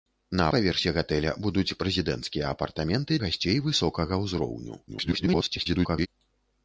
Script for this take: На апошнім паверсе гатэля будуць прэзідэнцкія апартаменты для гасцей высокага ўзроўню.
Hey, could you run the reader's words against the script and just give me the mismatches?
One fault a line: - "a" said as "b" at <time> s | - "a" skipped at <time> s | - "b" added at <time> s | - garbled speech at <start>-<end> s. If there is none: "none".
- "апошнім" skipped at 0.5 s
- "для" skipped at 3.2 s
- garbled speech at 4.9-6.1 s